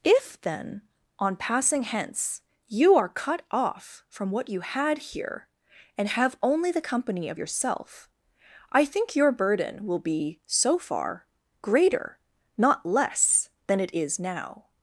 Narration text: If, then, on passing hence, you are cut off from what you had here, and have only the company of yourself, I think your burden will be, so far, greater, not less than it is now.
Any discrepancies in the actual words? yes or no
no